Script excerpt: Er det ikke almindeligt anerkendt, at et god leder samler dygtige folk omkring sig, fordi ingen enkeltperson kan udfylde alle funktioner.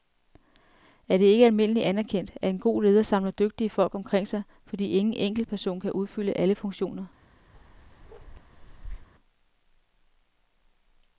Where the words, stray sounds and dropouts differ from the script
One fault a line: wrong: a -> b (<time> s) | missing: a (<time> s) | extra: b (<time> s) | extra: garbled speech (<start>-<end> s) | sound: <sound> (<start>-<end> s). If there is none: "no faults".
wrong: et -> en (2.5 s)
sound: bark (7.5-9.1 s)